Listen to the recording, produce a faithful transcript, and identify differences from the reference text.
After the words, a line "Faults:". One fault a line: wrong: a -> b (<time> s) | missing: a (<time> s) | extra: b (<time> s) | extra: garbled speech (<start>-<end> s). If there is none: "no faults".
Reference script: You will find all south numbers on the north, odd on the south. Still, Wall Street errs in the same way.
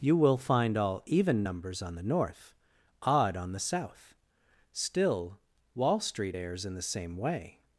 You will find all even numbers on the north, odd on the south. Still, Wall Street errs in the same way.
Faults:
wrong: south -> even (1.1 s)